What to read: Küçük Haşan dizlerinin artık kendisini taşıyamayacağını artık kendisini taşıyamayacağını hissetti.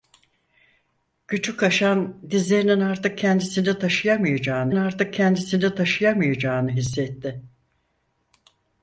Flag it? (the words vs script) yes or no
no